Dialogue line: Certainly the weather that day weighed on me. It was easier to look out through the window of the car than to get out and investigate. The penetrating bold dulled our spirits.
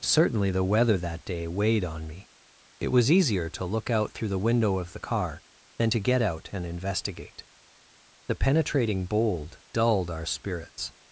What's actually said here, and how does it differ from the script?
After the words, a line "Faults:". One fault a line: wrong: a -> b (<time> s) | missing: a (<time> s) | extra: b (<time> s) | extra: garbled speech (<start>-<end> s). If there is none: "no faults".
Certainly the weather that day weighed on me. It was easier to look out through the window of the car than to get out and investigate. The penetrating bold dulled our spirits.
Faults:
no faults